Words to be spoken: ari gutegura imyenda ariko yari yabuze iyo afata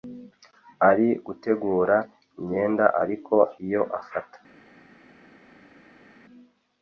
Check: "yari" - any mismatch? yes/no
yes